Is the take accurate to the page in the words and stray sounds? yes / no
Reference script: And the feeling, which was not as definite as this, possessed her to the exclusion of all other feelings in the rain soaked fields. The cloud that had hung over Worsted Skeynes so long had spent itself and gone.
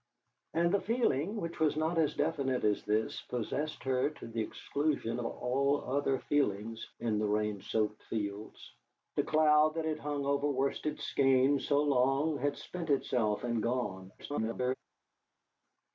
no